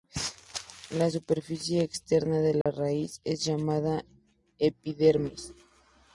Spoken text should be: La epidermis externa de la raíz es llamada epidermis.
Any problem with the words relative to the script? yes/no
yes